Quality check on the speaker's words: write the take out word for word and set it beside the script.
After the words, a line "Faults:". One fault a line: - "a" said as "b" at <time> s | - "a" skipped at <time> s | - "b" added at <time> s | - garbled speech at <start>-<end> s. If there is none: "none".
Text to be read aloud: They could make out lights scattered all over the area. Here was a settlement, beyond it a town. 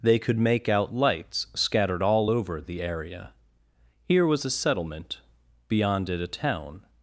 They could make out lights scattered all over the area. Here was a settlement, beyond it a town.
Faults:
none